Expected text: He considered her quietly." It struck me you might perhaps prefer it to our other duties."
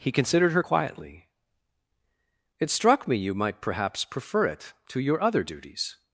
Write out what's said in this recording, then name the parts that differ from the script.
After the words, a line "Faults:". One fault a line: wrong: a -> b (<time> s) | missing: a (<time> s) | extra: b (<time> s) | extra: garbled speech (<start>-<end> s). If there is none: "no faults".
He considered her quietly." It struck me you might perhaps prefer it to your other duties."
Faults:
wrong: our -> your (5.0 s)